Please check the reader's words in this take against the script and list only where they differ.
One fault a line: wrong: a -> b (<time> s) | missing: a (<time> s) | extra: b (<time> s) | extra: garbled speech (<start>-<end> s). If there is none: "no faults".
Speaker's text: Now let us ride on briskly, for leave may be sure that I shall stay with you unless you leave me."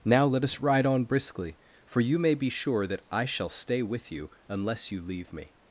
wrong: leave -> you (2.0 s)